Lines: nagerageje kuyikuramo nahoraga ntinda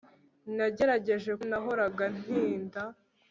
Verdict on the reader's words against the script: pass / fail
fail